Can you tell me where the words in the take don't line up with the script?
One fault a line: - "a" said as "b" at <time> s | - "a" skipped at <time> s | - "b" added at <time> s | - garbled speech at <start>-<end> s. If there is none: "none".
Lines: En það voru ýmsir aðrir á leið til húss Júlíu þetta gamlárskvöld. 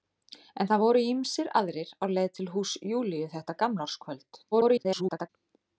- garbled speech at 4.5-5.3 s